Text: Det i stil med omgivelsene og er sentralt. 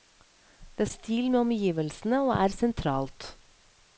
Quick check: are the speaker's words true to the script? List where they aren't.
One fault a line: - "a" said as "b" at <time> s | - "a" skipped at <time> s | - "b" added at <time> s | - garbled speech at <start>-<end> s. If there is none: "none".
none